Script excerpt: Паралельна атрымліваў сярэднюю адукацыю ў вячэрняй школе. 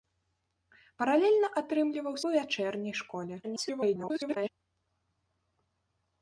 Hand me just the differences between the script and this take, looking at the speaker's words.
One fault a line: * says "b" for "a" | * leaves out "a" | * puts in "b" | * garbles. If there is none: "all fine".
* leaves out "сярэднюю адукацыю"
* garbles